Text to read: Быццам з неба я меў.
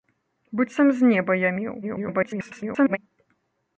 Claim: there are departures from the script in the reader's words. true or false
true